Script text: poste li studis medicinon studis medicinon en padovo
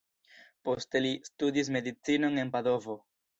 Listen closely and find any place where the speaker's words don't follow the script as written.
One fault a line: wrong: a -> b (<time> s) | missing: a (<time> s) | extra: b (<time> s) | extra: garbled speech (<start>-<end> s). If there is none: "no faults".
missing: studis medicinon (2.4 s)